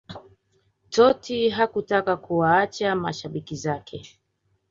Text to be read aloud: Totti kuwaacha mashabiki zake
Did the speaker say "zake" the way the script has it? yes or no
yes